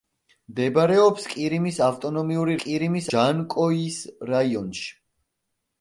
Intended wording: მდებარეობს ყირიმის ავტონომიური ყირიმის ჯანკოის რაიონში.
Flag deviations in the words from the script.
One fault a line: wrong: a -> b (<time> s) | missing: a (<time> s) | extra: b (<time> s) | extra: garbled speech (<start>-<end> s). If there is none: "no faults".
no faults